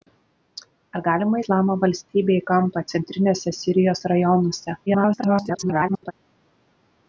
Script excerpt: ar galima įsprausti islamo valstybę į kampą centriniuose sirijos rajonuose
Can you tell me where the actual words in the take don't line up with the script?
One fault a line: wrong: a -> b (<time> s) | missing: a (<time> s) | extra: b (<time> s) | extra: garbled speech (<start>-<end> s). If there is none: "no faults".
missing: įsprausti (1.4 s)
extra: garbled speech (4.9-6.1 s)